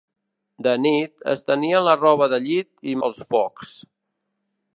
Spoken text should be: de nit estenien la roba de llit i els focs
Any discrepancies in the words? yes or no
no